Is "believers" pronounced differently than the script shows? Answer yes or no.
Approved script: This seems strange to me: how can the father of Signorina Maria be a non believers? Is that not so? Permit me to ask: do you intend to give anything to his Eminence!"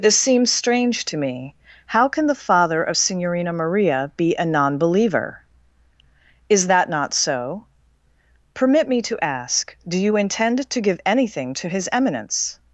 yes